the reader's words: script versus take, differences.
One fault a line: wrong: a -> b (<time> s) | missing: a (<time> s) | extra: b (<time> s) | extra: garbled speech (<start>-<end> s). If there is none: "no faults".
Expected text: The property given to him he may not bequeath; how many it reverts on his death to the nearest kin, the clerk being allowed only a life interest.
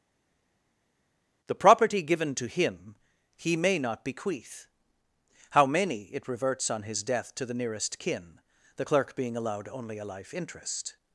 no faults